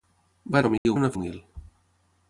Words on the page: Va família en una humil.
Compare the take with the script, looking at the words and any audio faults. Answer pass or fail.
fail